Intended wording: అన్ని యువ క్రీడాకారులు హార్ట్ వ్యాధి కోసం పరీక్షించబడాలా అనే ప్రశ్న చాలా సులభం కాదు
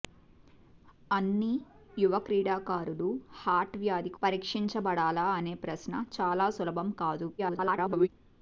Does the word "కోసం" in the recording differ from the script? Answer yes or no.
yes